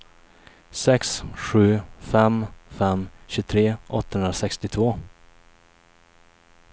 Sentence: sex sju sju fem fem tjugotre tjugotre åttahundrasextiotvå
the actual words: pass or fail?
fail